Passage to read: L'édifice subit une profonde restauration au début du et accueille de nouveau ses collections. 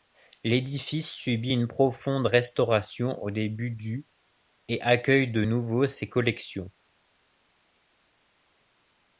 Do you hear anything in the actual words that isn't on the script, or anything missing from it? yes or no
no